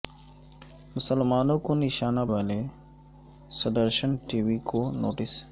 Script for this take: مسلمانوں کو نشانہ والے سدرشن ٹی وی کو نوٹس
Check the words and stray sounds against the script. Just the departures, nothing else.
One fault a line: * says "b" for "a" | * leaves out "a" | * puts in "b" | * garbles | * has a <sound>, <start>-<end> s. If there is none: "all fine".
all fine